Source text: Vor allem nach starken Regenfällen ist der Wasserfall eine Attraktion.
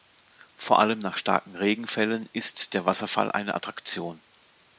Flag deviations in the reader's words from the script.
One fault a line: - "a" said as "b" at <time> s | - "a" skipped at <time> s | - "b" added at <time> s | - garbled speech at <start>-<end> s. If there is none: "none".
none